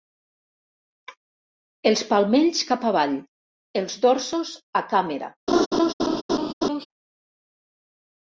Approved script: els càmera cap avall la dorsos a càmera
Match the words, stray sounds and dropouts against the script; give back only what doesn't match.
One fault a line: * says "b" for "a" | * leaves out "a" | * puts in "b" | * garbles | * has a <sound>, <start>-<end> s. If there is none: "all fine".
* says "palmells" for "càmera"
* says "els" for "la"
* has a laugh, 5.5-6.9 s